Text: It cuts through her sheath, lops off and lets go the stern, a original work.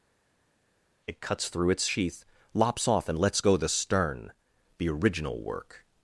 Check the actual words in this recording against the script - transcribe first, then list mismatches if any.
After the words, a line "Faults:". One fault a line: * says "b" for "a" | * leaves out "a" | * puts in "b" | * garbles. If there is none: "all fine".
It cuts through its sheath, lops off and lets go the stern, the original work.
Faults:
* says "its" for "her"
* says "the" for "a"